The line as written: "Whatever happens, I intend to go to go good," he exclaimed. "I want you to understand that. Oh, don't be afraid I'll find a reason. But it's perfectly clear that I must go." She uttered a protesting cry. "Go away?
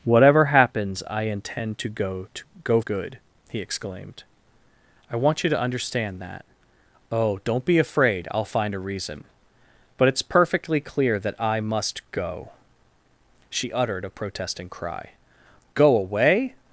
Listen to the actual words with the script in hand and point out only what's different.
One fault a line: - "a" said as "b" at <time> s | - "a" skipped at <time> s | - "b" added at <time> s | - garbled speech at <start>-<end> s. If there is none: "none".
none